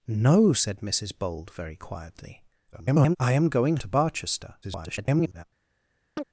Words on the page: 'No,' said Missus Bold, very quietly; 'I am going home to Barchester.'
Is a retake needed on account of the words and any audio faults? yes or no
yes